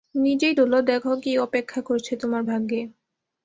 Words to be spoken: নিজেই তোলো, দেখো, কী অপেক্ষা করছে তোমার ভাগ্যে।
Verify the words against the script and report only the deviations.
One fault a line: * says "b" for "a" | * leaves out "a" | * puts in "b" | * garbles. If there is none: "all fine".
all fine